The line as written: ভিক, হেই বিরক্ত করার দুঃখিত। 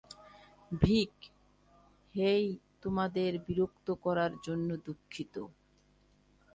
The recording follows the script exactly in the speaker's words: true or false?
false